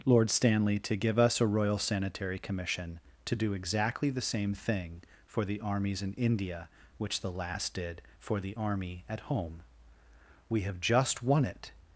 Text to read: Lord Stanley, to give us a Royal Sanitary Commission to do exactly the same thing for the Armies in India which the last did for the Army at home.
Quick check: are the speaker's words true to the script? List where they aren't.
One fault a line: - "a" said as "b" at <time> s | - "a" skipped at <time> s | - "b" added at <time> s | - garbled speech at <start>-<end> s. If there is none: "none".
- "We have just won it" added at 10.5 s